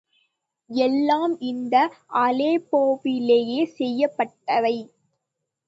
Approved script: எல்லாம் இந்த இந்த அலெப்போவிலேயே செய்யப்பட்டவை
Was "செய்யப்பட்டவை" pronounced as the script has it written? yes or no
yes